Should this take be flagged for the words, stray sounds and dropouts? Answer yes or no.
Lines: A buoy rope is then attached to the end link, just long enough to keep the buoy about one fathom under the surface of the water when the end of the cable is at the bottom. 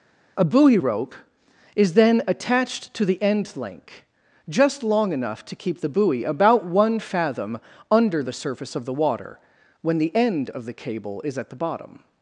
no